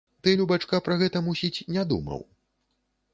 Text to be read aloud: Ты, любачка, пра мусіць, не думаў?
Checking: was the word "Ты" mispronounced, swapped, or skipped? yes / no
no